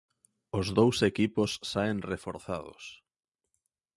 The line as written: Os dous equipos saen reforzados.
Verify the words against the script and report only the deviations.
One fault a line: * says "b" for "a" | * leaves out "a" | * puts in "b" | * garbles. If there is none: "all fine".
all fine